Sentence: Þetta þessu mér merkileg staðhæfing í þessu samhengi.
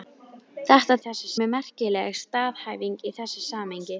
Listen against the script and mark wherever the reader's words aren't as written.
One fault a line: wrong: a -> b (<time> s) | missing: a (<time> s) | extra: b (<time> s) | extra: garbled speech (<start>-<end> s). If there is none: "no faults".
no faults